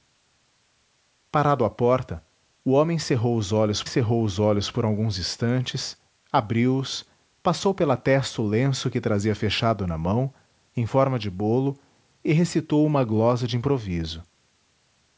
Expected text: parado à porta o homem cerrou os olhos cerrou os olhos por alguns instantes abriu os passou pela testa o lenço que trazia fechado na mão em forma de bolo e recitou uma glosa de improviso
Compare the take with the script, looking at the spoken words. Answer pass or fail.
pass